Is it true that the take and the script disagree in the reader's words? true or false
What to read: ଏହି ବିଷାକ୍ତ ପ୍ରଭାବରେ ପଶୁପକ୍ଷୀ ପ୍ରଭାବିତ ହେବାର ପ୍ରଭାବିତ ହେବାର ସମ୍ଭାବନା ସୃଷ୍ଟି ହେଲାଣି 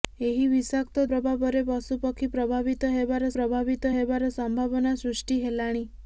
false